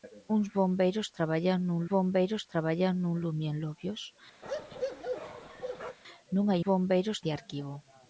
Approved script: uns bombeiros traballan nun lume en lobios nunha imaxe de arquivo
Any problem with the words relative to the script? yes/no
yes